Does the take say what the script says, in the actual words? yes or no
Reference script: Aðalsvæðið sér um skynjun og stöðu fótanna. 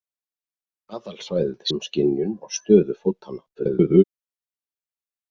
no